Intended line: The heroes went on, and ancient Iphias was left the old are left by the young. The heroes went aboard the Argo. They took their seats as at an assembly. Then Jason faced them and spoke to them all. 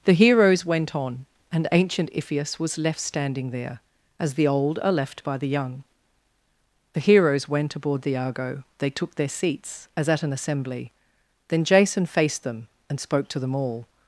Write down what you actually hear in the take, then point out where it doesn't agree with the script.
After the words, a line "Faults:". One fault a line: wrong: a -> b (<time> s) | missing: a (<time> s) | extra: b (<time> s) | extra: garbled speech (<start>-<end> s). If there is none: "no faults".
The heroes went on, and ancient Iphias was left standing there as the old are left by the young. The heroes went aboard the Argo. They took their seats as at an assembly. Then Jason faced them and spoke to them all.
Faults:
extra: standing there as (3.0 s)